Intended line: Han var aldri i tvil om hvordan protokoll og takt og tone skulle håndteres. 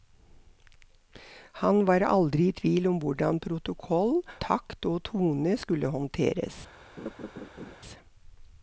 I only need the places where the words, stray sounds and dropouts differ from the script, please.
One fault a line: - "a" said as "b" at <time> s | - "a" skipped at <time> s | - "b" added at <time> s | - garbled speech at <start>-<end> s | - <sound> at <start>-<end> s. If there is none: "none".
- "og" skipped at 4.2 s
- laugh at 7.0-7.8 s